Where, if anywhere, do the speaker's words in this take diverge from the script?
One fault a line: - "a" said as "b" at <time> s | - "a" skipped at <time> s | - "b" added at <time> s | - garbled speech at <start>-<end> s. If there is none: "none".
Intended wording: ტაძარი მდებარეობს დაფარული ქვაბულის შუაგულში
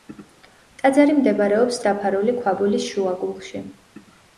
none